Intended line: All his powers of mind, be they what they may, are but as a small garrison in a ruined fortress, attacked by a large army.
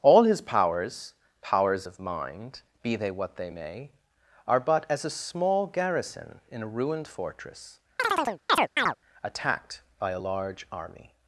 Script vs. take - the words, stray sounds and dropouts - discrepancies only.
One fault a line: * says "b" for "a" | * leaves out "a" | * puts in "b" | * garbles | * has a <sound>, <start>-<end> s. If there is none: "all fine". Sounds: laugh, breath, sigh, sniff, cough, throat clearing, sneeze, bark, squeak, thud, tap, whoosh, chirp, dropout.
* puts in "powers"
* has a chirp, 8.0-9.0 s